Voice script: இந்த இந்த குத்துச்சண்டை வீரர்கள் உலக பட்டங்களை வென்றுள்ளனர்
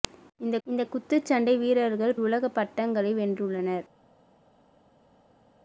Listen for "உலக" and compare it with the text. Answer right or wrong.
right